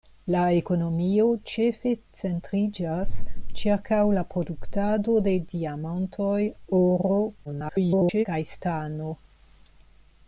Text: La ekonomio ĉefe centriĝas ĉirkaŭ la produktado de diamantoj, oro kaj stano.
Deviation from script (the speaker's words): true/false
true